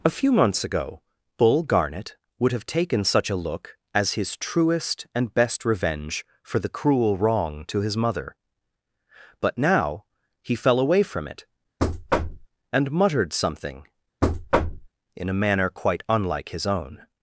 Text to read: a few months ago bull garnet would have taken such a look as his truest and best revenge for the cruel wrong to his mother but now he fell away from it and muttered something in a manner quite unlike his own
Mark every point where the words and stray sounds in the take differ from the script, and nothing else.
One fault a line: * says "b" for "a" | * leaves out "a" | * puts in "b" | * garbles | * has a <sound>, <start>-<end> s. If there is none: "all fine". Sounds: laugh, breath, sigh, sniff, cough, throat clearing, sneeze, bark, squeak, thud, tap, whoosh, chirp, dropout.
* has a thud, 11.8-12.5 s
* has a thud, 14.2-14.9 s